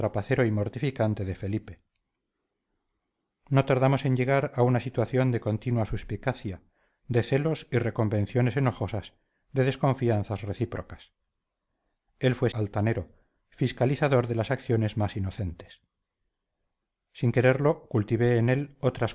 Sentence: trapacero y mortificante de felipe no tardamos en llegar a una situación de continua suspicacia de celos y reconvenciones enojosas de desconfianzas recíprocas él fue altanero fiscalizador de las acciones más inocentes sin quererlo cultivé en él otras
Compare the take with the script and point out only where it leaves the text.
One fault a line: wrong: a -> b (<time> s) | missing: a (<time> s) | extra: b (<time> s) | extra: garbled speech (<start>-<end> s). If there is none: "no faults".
no faults